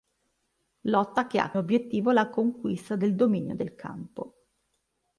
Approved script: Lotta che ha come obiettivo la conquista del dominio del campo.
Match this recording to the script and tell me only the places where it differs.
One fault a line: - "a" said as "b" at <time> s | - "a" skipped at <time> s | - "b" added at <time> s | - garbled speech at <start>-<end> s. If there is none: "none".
- "come" skipped at 1.5 s